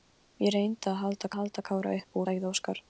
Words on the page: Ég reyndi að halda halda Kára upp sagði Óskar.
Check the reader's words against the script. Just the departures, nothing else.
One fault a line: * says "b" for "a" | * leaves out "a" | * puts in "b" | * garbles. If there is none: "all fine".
all fine